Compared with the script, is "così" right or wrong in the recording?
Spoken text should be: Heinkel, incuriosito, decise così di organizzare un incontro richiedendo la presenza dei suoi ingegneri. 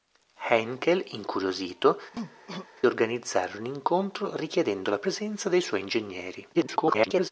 wrong